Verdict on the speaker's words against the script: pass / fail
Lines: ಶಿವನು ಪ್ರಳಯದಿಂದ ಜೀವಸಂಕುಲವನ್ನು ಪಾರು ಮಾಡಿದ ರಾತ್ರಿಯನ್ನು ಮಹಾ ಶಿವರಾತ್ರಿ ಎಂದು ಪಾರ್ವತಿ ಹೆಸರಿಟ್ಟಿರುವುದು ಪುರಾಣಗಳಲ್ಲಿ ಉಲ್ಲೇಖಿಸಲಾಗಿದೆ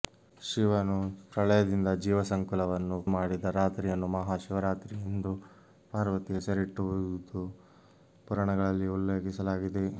fail